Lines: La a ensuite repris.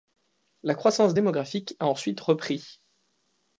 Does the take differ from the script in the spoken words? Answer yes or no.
yes